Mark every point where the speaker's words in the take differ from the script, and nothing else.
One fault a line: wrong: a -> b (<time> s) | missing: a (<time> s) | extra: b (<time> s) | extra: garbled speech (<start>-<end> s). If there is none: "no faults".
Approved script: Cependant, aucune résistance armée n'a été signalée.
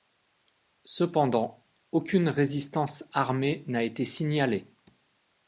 no faults